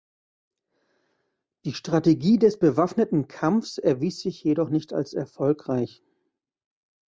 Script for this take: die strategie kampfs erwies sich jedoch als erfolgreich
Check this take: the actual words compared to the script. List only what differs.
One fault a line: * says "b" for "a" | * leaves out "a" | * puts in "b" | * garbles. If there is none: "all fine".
* puts in "des bewaffneten"
* puts in "nicht"